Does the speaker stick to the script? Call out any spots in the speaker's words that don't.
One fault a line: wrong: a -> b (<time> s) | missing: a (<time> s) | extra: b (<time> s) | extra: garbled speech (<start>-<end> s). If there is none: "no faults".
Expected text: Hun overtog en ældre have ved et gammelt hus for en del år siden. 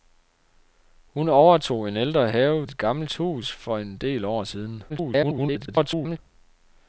missing: ved (2.7 s)
extra: garbled speech (4.9-6.2 s)